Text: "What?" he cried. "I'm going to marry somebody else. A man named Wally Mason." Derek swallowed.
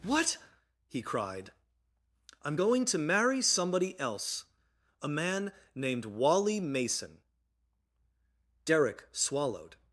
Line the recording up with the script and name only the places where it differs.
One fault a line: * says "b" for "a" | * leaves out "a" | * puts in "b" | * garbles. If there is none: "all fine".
all fine